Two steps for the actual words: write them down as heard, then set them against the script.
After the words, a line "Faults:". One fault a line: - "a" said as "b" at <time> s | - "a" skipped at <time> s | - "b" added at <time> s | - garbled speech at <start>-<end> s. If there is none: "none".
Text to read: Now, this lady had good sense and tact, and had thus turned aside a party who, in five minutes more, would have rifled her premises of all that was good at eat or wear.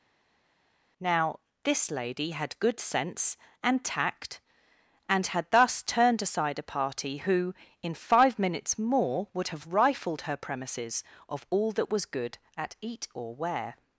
Now, this lady had good sense and tact, and had thus turned aside a party who, in five minutes more, would have rifled her premises of all that was good at eat or wear.
Faults:
none